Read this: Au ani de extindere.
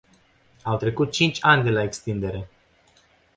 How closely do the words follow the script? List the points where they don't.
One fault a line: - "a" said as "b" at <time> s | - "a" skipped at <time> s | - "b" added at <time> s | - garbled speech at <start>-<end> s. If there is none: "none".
- "trecut cinci" added at 0.8 s
- "la" added at 1.7 s